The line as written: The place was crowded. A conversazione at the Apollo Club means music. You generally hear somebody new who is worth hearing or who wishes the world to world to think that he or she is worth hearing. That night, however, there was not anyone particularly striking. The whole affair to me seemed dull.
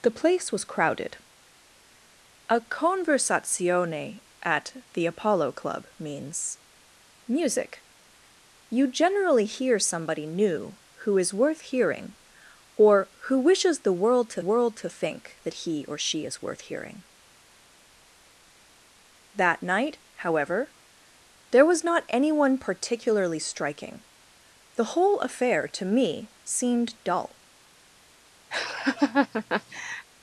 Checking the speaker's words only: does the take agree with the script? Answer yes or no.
yes